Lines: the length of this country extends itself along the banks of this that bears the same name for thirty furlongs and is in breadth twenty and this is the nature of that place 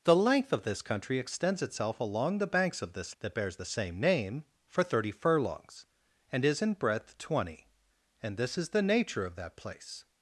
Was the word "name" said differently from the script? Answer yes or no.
no